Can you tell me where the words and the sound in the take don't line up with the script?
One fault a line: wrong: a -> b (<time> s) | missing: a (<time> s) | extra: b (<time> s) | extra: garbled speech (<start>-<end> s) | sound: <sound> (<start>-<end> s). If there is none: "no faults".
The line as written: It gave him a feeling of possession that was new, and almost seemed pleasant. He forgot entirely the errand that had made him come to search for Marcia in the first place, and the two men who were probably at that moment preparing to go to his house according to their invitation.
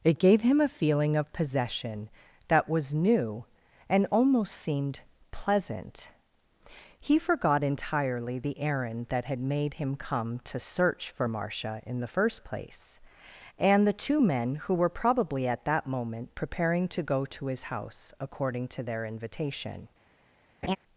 sound: laugh (20.6-20.8 s)